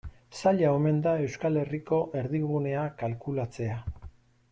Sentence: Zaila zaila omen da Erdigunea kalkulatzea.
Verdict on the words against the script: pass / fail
fail